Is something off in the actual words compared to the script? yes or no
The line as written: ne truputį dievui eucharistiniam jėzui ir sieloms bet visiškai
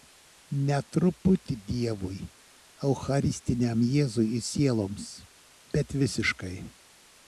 no